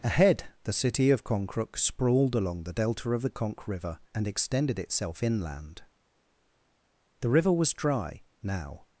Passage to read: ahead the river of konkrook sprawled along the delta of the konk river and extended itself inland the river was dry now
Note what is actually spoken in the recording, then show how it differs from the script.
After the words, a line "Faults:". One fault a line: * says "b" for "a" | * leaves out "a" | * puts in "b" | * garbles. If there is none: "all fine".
ahead the city of konkrook sprawled along the delta of the konk river and extended itself inland the river was dry now
Faults:
* says "city" for "river"